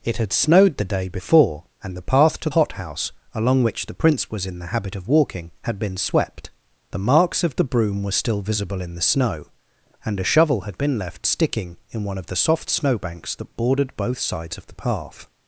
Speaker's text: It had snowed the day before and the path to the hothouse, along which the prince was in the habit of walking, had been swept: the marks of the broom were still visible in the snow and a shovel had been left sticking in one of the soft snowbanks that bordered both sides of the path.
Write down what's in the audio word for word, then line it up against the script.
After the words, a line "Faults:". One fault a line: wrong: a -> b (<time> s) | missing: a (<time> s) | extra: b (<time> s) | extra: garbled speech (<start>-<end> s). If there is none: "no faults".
It had snowed the day before and the path to hothouse, along which the prince was in the habit of walking, had been swept: the marks of the broom were still visible in the snow and a shovel had been left sticking in one of the soft snowbanks that bordered both sides of the path.
Faults:
missing: the (2.5 s)